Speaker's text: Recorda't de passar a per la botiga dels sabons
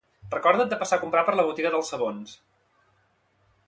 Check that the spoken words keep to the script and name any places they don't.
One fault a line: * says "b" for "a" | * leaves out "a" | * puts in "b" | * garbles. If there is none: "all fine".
* puts in "comprar"